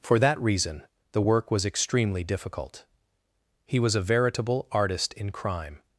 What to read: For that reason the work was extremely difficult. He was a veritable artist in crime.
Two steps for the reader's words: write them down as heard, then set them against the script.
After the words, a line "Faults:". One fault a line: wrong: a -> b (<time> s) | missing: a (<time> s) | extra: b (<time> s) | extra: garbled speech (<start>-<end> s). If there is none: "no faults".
For that reason the work was extremely difficult. He was a veritable artist in crime.
Faults:
no faults